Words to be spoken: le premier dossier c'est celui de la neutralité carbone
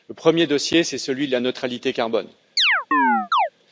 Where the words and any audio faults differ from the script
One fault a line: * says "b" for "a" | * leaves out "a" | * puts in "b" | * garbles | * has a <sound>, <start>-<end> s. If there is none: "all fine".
* has a chirp, 2.6-3.5 s